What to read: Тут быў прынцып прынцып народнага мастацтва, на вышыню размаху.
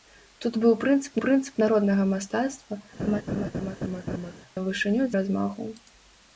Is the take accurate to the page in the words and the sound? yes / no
no